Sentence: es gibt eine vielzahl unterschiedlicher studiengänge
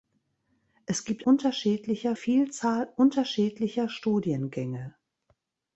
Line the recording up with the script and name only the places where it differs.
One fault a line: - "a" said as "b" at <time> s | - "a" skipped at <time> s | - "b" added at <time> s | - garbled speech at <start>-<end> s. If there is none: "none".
- "eine" said as "unterschiedlicher" at 1.2 s